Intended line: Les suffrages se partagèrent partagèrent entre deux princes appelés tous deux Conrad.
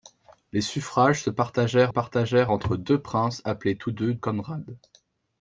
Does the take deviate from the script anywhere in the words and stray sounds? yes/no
no